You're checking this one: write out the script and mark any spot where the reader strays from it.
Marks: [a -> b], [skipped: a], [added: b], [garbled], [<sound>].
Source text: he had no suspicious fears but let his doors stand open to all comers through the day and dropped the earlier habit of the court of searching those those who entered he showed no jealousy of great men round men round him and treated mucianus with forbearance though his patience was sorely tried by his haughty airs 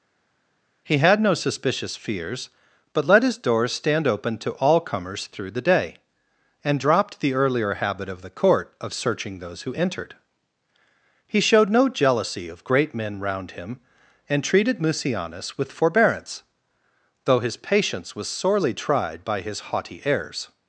he had no suspicious fears but let his doors stand open to all comers through the day and dropped the earlier habit of the court of searching those [skipped: those] who entered he showed no jealousy of great men round [skipped: men round] him and treated mucianus with forbearance though his patience was sorely tried by his haughty airs